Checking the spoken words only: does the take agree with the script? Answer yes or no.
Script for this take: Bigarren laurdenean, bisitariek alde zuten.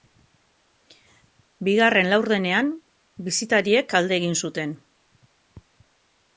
no